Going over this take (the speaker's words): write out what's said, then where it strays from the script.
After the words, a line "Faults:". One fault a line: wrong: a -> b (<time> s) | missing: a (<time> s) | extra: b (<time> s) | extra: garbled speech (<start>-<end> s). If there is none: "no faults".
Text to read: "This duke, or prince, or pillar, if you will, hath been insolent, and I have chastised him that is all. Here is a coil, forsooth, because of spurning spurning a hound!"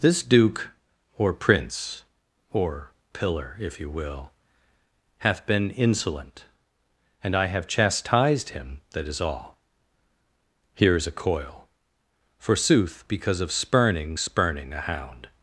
"This duke, or prince, or pillar, if you will, hath been insolent, and I have chastised him that is all. Here is a coil, forsooth, because of spurning spurning a hound!"
Faults:
no faults